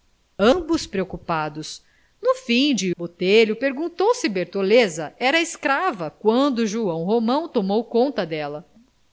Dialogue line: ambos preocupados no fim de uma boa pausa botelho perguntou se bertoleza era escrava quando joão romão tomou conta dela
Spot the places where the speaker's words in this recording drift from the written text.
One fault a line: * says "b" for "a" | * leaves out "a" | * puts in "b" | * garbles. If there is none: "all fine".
* leaves out "uma boa pausa"